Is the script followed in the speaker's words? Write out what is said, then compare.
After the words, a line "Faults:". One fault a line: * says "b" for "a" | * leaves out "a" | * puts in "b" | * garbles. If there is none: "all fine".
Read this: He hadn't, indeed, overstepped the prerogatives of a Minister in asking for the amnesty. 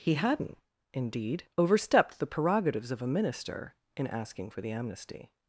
He hadn't, indeed, overstepped the prerogatives of a Minister in asking for the amnesty.
Faults:
all fine